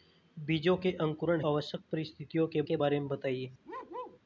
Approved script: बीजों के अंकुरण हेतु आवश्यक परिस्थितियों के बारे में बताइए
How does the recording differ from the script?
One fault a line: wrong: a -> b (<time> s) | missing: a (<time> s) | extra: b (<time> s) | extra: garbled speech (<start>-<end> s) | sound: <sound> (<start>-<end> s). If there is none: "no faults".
missing: हेतु (1.4 s)
extra: के (2.6 s)
sound: bark (3.6-4.2 s)